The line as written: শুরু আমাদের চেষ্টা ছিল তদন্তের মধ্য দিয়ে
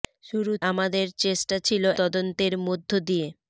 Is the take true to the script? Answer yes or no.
yes